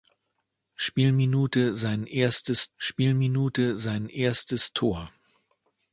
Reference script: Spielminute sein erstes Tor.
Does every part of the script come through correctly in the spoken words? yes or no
no